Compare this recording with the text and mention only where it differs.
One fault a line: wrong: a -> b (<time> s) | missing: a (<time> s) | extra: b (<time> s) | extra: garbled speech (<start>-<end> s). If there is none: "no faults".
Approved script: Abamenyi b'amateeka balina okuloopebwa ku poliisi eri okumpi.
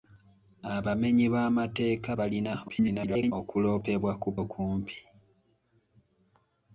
extra: garbled speech (2.7-3.3 s)
missing: poliisi eri (4.3 s)